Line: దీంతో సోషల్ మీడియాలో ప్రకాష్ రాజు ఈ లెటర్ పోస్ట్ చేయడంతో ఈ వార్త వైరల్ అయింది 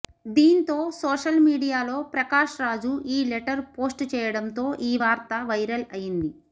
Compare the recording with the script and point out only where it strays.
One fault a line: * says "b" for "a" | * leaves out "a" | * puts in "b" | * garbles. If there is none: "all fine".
all fine